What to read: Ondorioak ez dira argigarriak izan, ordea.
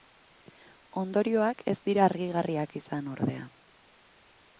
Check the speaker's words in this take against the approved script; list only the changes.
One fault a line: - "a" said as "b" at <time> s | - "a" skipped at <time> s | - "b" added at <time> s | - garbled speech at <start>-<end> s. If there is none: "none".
none